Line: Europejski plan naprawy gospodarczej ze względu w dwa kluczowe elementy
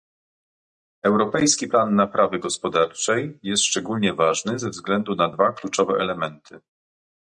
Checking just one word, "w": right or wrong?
wrong